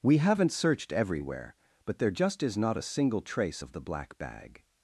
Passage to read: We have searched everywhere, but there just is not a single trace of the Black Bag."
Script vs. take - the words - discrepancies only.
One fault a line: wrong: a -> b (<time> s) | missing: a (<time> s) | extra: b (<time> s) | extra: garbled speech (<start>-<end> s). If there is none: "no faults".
wrong: have -> haven't (0.2 s)